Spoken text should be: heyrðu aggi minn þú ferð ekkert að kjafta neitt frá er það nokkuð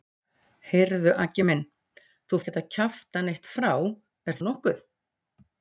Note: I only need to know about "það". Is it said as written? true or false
false